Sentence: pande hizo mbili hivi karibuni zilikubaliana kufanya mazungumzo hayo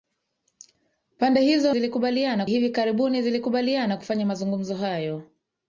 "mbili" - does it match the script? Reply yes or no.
no